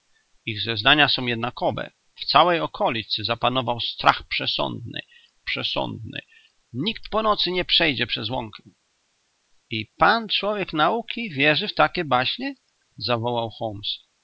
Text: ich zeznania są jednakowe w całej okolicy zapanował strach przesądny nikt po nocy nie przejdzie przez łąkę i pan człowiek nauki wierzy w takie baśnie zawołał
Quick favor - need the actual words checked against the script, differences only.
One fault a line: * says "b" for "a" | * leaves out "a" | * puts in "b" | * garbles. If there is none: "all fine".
* puts in "przesądny"